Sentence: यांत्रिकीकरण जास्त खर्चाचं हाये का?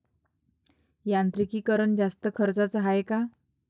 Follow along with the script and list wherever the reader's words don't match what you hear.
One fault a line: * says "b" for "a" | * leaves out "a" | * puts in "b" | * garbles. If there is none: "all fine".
all fine